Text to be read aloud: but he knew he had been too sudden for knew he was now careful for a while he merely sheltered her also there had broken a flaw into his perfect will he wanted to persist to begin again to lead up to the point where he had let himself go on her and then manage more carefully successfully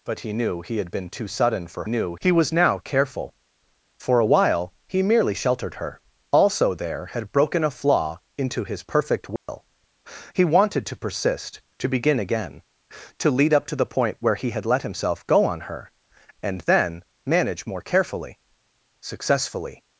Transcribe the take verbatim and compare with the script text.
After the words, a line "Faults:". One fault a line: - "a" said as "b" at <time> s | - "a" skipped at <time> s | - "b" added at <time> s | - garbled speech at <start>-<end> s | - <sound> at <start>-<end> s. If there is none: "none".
but he knew he had been too sudden for knew he was now careful for a while he merely sheltered her also there had broken a flaw into his perfect will he wanted to persist to begin again to lead up to the point where he had let himself go on her and then manage more carefully successfully
Faults:
- dropout at 9.4-9.5 s